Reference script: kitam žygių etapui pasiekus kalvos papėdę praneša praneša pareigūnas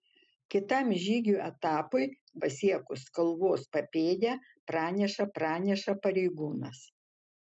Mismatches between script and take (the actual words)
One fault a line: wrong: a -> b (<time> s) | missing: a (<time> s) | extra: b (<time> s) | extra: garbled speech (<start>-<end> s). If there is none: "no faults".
no faults